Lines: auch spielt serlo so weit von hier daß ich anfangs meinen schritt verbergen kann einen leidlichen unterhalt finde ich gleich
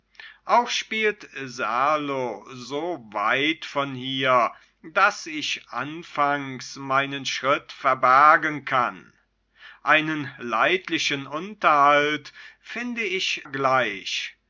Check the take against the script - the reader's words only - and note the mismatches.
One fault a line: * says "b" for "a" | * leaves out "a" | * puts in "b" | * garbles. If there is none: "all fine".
all fine